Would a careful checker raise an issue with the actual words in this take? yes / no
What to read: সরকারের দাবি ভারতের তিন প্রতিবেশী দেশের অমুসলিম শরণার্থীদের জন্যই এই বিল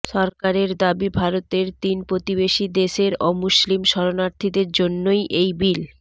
no